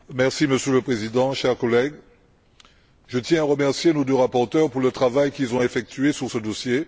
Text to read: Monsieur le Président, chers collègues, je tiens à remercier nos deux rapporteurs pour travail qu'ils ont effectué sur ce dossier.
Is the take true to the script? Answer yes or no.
no